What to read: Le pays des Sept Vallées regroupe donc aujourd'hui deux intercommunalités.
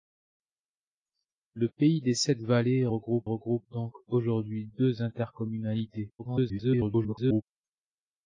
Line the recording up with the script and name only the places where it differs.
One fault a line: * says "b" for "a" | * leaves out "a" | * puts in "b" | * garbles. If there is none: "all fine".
* puts in "regroupe"
* garbles